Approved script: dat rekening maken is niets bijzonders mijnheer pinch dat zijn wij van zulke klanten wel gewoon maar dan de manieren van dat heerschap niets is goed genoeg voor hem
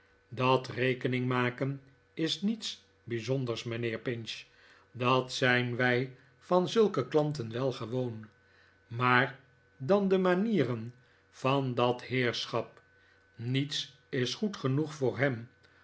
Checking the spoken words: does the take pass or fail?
pass